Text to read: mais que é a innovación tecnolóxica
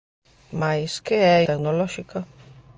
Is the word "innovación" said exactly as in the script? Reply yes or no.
no